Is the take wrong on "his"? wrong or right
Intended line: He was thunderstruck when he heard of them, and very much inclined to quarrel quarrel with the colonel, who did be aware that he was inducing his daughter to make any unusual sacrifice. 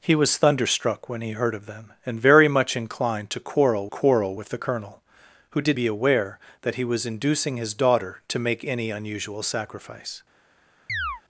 right